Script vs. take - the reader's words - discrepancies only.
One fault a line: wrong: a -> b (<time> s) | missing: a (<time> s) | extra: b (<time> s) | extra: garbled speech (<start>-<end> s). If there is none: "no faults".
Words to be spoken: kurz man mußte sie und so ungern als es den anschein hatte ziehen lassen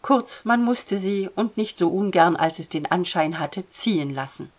extra: nicht (1.6 s)